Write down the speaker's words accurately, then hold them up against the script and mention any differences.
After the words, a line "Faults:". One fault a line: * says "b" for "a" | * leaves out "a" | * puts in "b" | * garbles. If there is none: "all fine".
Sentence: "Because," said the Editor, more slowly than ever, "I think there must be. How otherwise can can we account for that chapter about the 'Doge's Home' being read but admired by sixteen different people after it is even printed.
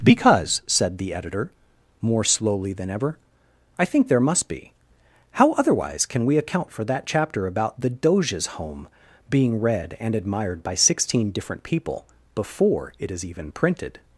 "Because," said the Editor, more slowly than ever, "I think there must be. How otherwise can we account for that chapter about the 'Doge's Home' being read and admired by sixteen different people before it is even printed.
Faults:
* leaves out "can"
* says "and" for "but"
* says "before" for "after"